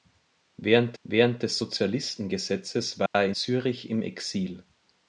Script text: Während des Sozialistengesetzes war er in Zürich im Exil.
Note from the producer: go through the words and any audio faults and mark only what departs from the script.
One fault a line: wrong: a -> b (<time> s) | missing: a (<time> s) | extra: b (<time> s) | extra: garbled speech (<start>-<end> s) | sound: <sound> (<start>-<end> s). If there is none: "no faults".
extra: während (1.0 s)
sound: dropout (3.1-3.1 s)
missing: in (3.3 s)